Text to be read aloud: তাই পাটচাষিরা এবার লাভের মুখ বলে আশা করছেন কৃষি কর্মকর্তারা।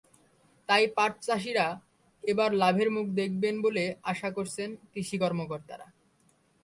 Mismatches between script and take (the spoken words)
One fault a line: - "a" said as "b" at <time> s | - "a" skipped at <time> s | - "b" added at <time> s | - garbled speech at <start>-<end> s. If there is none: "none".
- "দেখবেন" added at 3.1 s